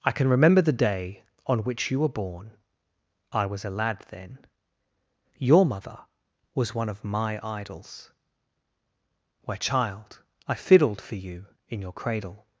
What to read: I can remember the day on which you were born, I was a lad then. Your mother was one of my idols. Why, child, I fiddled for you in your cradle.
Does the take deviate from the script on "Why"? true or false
true